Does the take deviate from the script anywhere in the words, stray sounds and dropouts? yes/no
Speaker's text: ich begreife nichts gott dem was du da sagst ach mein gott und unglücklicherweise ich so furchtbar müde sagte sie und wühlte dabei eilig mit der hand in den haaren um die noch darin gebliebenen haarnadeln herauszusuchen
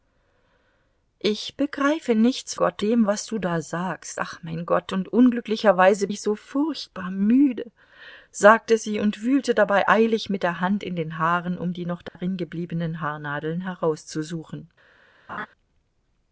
yes